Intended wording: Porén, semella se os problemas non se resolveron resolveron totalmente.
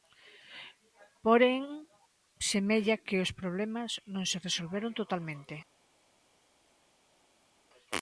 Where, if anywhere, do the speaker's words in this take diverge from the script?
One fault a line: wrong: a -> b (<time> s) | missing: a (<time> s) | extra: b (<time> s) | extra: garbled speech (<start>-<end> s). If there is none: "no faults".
wrong: se -> que (3.0 s)
missing: resolveron (4.9 s)